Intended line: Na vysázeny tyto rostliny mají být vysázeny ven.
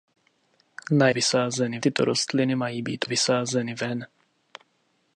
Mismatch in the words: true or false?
false